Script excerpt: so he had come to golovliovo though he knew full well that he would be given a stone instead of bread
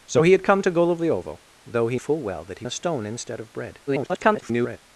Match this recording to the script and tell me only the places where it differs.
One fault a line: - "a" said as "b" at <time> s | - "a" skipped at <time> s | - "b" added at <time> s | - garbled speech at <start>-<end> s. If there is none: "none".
- "knew" skipped at 2.0 s
- "would be given" skipped at 2.7 s
- garbled speech at 3.9-4.8 s